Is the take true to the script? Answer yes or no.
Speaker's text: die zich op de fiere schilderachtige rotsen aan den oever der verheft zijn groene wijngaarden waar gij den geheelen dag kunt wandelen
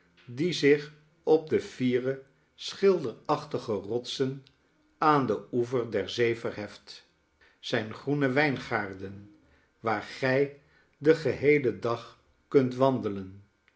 no